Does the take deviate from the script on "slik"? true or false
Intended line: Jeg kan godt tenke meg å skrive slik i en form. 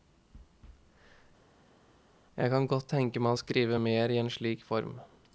true